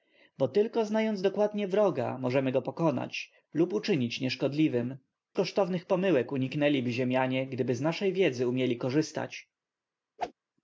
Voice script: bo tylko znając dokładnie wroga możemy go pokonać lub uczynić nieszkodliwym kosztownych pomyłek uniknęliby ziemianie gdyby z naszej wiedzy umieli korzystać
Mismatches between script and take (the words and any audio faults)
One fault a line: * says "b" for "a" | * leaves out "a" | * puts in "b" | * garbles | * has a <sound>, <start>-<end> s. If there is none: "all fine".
* has a whoosh, 10.2-10.3 s